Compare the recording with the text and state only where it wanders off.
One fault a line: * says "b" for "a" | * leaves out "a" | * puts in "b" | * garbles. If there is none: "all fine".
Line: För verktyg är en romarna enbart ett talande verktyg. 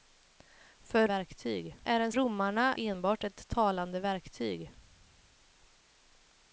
all fine